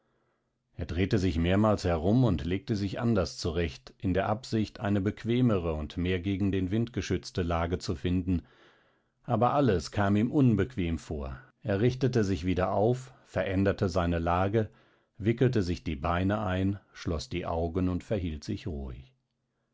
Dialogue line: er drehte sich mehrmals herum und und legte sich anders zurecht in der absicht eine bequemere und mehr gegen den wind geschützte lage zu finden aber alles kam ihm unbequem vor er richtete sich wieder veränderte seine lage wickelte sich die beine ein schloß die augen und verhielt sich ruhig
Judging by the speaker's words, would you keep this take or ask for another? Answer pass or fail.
fail